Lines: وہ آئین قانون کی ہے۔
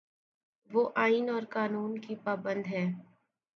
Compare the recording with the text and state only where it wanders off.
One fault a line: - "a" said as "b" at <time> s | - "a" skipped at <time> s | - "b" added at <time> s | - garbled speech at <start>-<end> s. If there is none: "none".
- "اور" added at 1.3 s
- "پابند" added at 2.2 s